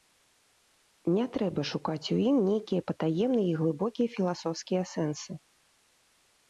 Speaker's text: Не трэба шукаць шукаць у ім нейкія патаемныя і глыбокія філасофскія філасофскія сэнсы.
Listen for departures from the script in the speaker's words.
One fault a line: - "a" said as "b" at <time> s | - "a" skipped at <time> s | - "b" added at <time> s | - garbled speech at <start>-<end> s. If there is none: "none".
- "шукаць" skipped at 2.1 s
- "філасофскія" skipped at 4.8 s